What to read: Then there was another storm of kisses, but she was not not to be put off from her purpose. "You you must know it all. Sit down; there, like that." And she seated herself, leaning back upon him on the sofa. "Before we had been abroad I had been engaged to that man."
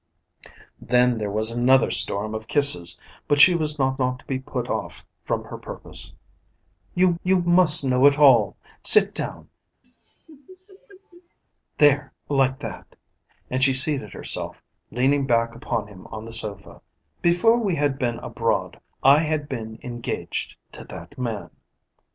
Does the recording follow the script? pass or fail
pass